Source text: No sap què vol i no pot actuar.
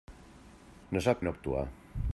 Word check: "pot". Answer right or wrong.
wrong